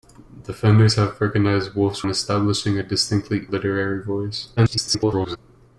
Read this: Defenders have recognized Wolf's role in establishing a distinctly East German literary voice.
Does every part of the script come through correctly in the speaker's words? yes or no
no